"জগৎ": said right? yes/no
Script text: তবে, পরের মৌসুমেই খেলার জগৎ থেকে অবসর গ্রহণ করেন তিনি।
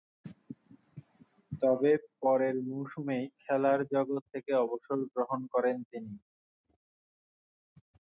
yes